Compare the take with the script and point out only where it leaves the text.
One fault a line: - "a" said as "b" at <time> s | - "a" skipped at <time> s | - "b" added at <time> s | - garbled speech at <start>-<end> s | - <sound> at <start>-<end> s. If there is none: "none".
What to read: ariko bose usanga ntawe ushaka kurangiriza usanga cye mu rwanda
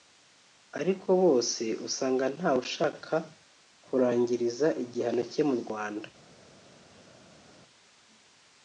- "usanga" said as "igihano" at 4.8 s